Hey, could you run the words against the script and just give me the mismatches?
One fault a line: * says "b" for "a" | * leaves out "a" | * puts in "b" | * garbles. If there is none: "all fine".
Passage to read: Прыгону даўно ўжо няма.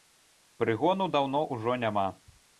all fine